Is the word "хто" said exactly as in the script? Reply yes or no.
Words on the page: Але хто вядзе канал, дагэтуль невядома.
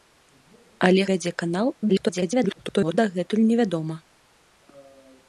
no